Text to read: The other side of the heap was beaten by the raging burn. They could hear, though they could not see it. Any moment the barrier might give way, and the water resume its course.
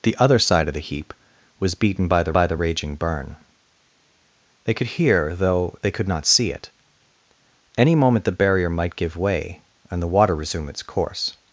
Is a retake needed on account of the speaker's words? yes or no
yes